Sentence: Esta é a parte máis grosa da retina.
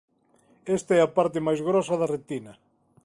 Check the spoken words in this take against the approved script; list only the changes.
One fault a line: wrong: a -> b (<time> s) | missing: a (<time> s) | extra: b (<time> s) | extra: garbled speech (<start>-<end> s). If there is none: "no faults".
no faults